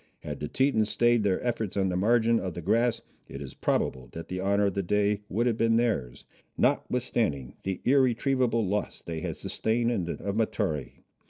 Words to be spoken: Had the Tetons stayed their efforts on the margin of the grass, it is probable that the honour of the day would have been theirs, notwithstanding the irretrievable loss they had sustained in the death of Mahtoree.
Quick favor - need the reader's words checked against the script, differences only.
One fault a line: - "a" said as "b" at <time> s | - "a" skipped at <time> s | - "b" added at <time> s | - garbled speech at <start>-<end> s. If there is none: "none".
- "death" skipped at 10.2 s